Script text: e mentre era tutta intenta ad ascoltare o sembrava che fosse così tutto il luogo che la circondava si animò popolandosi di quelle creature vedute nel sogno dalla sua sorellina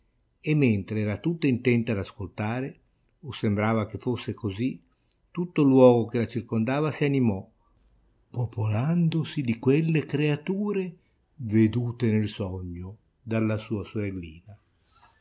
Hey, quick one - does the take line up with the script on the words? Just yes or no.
yes